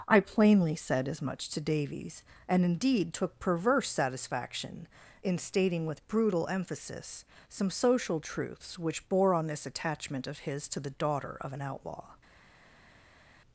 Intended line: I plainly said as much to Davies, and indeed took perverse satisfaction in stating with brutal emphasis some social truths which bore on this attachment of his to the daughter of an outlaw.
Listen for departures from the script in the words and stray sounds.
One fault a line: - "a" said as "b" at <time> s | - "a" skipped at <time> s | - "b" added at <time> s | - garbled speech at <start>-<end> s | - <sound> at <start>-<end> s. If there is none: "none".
none